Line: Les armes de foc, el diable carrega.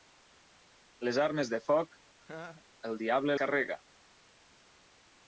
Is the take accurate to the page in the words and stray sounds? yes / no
no